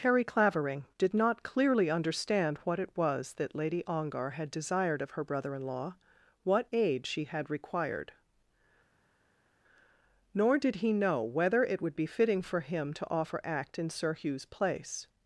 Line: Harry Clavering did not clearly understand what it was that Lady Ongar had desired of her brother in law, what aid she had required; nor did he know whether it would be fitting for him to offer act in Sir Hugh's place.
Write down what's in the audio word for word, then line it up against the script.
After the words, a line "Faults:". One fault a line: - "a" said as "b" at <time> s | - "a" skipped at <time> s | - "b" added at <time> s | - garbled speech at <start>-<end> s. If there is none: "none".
Harry Clavering did not clearly understand what it was that Lady Ongar had desired of her brother in law, what aid she had required; nor did he know whether it would be fitting for him to offer act in Sir Hugh's place.
Faults:
none